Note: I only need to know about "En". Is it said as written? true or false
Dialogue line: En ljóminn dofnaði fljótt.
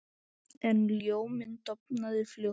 true